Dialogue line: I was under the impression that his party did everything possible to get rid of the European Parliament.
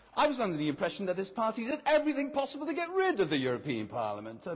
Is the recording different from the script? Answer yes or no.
no